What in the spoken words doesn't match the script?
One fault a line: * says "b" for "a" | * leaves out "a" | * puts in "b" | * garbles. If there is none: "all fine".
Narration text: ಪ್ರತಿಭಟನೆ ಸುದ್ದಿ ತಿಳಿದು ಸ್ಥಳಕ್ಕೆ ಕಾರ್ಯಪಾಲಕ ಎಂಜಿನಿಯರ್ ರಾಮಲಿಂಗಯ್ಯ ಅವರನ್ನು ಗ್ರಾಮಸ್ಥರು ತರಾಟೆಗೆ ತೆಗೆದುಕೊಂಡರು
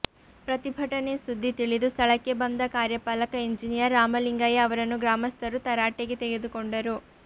* puts in "ಬಂದ"